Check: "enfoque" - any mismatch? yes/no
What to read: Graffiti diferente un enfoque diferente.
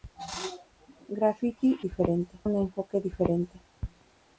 no